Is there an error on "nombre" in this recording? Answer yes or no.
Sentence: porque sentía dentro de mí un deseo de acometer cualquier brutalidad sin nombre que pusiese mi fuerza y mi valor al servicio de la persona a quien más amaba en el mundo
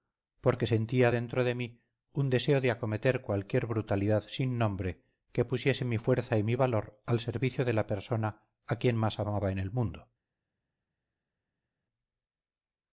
no